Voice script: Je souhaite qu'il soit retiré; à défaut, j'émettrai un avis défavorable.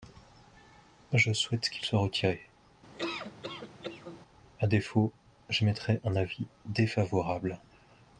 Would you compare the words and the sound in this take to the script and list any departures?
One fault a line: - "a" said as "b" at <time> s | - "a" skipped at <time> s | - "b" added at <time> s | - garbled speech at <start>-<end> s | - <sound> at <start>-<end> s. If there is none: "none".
- laugh at 2.9-4.2 s